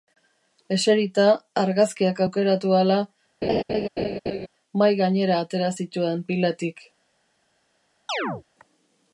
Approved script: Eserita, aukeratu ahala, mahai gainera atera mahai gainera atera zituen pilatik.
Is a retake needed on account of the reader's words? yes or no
yes